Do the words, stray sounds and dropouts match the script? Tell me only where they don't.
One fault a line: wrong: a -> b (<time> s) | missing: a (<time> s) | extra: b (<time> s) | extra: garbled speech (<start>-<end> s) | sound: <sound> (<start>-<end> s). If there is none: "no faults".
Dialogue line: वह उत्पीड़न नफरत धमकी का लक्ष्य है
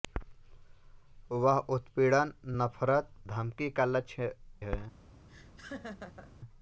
sound: laugh (5.3-6.3 s)